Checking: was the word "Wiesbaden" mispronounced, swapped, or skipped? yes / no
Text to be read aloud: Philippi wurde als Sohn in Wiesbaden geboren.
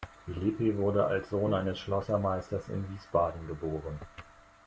no